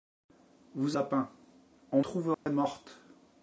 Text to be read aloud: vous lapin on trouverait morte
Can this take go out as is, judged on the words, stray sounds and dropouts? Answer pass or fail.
fail